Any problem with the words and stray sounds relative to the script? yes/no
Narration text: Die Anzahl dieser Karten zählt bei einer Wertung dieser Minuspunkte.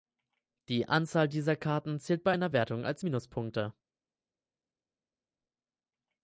yes